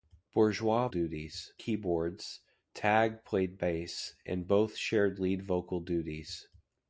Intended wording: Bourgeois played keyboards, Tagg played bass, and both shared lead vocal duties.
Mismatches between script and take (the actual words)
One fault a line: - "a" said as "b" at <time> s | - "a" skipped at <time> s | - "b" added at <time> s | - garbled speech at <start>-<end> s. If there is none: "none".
- "played" said as "duties" at 0.9 s